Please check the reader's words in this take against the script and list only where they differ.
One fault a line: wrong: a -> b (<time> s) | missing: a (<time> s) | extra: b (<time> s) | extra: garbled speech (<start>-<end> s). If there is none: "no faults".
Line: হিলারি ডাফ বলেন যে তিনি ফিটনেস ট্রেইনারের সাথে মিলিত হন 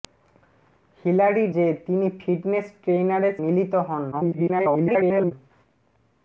missing: ডাফ বলেন (1.4 s)
missing: সাথে (3.3 s)
extra: garbled speech (4.1-5.3 s)